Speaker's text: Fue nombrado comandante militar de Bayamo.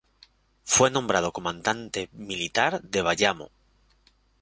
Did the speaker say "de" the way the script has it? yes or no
yes